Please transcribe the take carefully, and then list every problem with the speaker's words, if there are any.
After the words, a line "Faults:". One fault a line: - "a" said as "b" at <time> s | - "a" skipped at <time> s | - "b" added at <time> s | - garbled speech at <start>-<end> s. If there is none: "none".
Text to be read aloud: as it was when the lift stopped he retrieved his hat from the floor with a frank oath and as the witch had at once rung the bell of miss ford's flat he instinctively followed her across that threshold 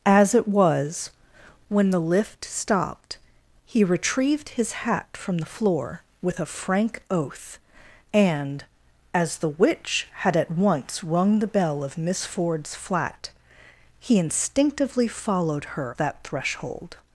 as it was when the lift stopped he retrieved his hat from the floor with a frank oath and as the witch had at once rung the bell of miss ford's flat he instinctively followed her that threshold
Faults:
- "across" skipped at 15.9 s